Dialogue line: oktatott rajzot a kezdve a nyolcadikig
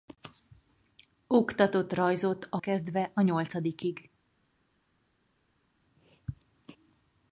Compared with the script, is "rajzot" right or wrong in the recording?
right